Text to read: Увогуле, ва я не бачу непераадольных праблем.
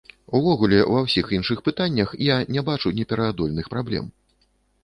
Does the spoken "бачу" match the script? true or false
true